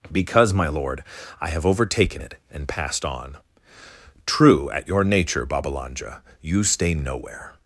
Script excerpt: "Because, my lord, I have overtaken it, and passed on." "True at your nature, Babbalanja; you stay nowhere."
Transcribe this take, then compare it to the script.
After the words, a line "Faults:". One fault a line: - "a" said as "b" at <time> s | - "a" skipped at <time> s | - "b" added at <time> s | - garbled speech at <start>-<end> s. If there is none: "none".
"Because, my lord, I have overtaken it, and passed on." "True at your nature, Babbalanja; you stay nowhere."
Faults:
none